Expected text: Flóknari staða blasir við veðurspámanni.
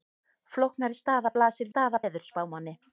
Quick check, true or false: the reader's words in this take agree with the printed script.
false